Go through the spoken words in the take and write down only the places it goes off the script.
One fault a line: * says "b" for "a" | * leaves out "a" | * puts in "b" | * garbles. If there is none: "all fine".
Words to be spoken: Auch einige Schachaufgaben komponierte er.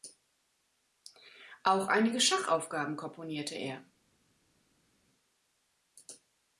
all fine